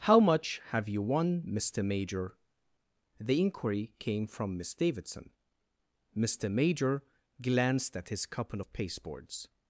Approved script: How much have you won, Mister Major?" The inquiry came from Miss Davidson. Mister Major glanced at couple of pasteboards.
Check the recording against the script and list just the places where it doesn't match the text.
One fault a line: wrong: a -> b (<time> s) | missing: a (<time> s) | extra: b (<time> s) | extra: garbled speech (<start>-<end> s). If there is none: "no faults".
extra: his (8.1 s)